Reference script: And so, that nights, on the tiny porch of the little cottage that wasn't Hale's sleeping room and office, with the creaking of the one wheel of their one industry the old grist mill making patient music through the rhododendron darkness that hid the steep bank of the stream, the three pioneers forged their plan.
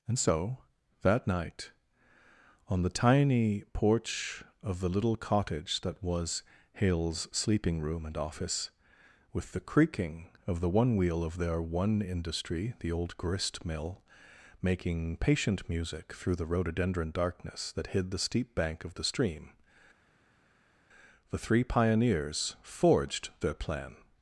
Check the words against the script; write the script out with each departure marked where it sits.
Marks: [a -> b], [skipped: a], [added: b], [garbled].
And so, that [nights, -> night] on the tiny porch of the little cottage that [wasn't -> was] Hale's sleeping room and office, with the creaking of the one wheel of their one industry the old grist mill making patient music through the rhododendron darkness that hid the steep bank of the stream, the three pioneers forged their plan.